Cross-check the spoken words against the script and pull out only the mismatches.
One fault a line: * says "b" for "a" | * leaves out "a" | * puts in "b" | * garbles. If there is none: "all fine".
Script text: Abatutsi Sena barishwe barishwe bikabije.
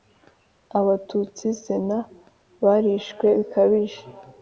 * leaves out "barishwe"